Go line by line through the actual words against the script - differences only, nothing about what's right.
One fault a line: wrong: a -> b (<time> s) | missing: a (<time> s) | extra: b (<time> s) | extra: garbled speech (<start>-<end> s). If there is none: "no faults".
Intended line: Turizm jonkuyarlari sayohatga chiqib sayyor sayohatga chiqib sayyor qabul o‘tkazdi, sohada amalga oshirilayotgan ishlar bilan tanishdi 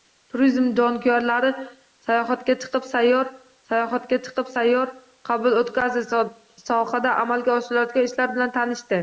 no faults